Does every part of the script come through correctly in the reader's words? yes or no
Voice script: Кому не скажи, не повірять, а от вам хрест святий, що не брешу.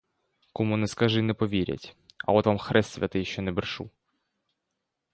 yes